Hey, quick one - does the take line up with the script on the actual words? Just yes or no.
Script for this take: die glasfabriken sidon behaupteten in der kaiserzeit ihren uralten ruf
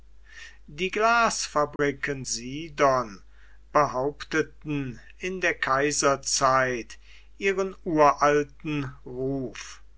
yes